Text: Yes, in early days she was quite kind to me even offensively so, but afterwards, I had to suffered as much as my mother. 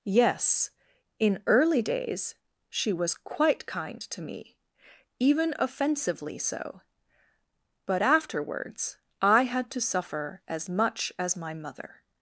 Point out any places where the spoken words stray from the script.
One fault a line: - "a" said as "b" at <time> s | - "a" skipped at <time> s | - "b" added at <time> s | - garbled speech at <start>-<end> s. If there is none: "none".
- "suffered" said as "suffer" at 9.8 s